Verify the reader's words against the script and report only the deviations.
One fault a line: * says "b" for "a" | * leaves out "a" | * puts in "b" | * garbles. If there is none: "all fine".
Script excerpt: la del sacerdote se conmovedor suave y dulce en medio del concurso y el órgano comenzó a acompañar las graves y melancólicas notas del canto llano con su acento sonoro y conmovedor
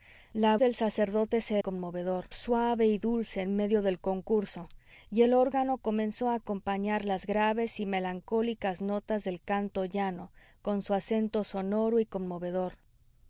all fine